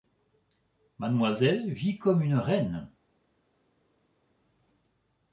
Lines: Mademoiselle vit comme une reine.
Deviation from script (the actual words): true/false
false